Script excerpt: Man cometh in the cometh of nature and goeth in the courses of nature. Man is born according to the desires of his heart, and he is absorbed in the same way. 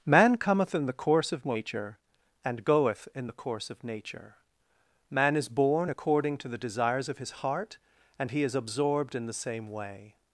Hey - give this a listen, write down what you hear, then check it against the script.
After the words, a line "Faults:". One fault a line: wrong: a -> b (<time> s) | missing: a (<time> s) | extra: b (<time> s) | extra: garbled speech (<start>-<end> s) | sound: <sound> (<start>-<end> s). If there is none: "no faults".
Man cometh in the course of nature and goeth in the course of nature. Man is born according to the desires of his heart, and he is absorbed in the same way.
Faults:
wrong: cometh -> course (0.9 s)
wrong: courses -> course (3.3 s)